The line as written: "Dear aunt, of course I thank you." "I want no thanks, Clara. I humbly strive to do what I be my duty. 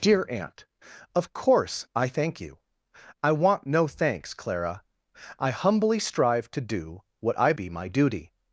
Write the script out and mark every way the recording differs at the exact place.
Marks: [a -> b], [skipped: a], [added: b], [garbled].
"Dear aunt, of course I thank you." "I want no thanks, Clara. I humbly strive to do what I be my duty.